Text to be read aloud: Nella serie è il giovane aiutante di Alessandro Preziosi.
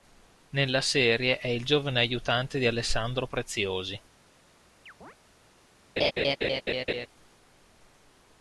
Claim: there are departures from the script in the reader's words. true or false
false